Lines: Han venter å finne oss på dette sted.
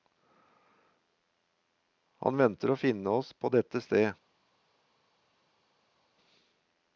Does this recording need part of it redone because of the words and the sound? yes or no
no